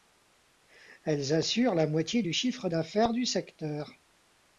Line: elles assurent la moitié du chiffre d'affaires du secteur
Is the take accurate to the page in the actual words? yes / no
yes